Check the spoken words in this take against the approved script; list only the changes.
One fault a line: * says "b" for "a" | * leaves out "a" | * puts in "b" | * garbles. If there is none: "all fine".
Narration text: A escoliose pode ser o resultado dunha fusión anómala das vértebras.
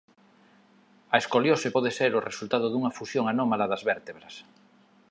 all fine